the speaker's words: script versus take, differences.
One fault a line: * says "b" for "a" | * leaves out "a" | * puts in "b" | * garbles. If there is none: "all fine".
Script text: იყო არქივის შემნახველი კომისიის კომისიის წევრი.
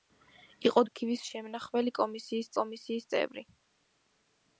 all fine